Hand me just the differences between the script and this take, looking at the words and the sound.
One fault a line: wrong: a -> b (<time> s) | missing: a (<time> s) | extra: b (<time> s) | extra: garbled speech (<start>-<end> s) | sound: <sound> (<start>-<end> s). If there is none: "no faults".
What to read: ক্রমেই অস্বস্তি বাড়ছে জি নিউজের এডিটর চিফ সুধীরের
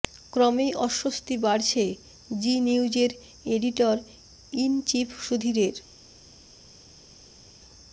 extra: ইন (4.5 s)